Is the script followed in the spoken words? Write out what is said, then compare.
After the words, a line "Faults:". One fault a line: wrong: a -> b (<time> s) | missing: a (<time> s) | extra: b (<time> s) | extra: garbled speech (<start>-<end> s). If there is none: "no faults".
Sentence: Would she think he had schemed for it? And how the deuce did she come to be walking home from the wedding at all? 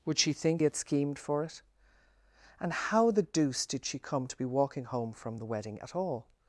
Would she think had schemed for it? And how the deuce did she come to be walking home from the wedding at all?
Faults:
missing: he (0.6 s)